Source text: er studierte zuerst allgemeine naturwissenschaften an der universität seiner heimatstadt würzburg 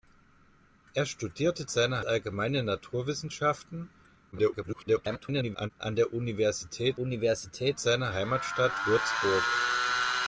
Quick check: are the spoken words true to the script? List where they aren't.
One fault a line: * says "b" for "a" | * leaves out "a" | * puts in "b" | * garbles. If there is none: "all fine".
* says "seiner" for "zuerst"
* garbles
* puts in "universität"